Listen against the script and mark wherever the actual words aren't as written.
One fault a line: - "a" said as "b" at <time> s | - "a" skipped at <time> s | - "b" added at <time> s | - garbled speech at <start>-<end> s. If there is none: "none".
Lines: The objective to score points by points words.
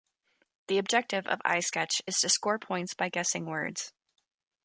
- "of iSketch is" added at 1.3 s
- "points" said as "guessing" at 3.1 s